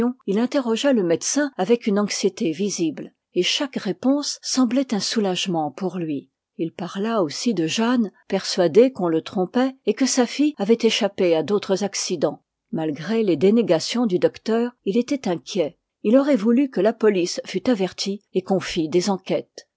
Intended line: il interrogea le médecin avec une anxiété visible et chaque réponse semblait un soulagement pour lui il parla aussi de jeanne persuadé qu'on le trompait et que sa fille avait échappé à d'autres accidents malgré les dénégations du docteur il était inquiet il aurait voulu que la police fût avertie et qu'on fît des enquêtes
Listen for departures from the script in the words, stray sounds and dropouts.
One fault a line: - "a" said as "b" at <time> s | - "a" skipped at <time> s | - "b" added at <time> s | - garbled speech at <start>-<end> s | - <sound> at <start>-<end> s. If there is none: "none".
none